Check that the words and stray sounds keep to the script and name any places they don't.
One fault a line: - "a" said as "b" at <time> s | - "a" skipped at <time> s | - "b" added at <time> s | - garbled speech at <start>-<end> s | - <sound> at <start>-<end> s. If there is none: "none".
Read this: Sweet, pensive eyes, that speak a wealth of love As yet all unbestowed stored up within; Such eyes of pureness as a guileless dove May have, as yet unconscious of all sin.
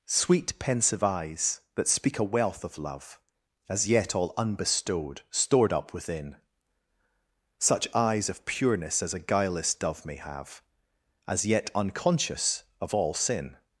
none